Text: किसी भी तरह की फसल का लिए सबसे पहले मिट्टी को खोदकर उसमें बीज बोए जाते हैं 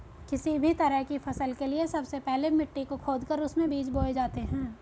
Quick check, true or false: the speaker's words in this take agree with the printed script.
false